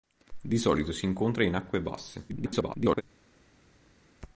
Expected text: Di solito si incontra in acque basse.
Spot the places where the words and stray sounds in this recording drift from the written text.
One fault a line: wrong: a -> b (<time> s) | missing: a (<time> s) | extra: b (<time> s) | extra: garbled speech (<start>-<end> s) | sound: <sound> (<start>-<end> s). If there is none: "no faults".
extra: garbled speech (2.3-3.0 s)